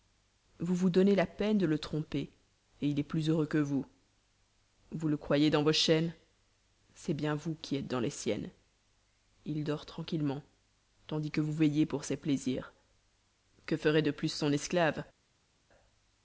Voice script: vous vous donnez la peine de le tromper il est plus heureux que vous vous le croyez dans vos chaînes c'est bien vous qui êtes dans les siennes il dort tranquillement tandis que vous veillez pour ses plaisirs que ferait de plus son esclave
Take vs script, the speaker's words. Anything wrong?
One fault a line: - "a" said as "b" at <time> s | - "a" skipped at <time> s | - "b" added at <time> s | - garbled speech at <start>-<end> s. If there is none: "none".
none